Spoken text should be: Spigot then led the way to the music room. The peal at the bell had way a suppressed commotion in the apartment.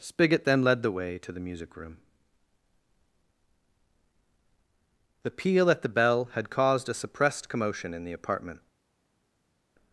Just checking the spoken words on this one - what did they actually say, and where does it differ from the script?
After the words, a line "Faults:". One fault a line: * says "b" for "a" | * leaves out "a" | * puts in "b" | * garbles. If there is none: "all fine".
Spigot then led the way to the music room. The peal at the bell had caused a suppressed commotion in the apartment.
Faults:
* says "caused" for "way"